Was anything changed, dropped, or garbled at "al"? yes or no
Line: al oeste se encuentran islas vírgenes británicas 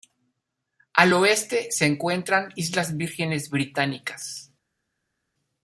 no